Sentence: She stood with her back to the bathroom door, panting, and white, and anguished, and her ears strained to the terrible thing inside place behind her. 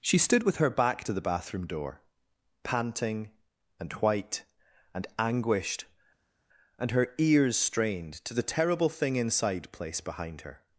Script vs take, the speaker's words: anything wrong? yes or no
no